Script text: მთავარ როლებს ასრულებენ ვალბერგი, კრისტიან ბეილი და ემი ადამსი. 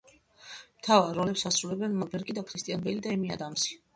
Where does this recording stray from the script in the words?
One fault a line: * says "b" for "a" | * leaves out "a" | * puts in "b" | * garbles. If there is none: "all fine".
all fine